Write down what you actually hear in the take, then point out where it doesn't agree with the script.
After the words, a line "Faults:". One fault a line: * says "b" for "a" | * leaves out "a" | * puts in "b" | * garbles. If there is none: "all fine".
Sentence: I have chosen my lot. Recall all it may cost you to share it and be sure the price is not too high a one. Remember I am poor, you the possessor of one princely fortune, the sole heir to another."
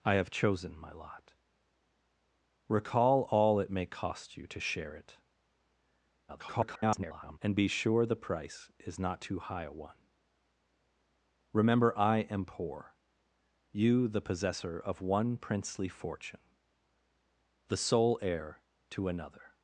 I have chosen my lot. Recall all it may cost you to share it [garbled] and be sure the price is not too high a one. Remember I am poor, you the possessor of one princely fortune, the sole heir to another."
Faults:
* garbles